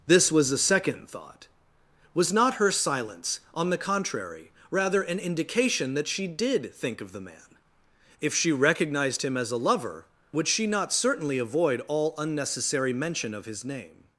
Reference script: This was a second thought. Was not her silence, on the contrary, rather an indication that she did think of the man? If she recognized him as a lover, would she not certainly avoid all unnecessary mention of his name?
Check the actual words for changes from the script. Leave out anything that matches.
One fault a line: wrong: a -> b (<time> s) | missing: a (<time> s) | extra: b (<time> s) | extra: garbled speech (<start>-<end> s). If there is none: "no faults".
no faults